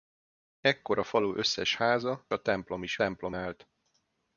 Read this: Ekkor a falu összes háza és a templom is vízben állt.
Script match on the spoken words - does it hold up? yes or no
no